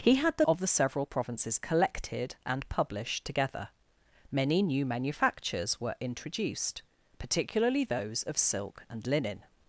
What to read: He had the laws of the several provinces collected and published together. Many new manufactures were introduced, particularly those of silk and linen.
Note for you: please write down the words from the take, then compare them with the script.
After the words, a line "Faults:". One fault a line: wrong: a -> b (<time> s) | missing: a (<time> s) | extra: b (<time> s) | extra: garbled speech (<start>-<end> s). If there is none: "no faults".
He had the of the several provinces collected and published together. Many new manufactures were introduced, particularly those of silk and linen.
Faults:
missing: laws (0.5 s)